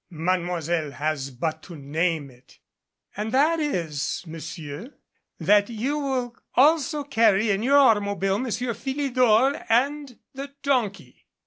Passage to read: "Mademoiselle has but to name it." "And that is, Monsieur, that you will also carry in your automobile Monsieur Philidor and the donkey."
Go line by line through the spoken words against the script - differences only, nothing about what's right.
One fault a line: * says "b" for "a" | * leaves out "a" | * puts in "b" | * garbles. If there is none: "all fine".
all fine